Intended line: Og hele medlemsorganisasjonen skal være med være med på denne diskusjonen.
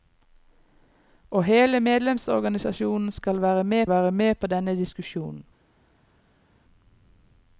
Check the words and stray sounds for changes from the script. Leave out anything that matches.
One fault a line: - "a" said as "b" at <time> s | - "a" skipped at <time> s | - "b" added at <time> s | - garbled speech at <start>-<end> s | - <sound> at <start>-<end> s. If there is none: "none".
none